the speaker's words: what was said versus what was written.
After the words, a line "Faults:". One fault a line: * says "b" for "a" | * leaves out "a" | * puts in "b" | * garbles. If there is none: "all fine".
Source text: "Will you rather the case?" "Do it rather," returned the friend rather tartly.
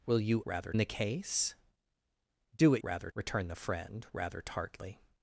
"Will you rather the case?" "Do it rather," returned the friend rather tartly.
Faults:
all fine